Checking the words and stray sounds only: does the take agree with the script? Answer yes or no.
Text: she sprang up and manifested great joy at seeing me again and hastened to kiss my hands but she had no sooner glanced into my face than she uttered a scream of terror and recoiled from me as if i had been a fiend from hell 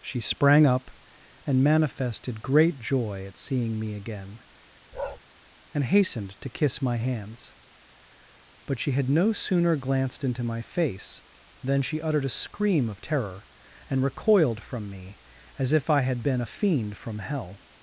no